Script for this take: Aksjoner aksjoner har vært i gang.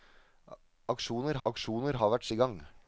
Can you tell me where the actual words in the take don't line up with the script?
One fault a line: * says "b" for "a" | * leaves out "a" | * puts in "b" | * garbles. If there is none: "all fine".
all fine